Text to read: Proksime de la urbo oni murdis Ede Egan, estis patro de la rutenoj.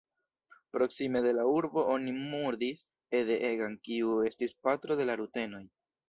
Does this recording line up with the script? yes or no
no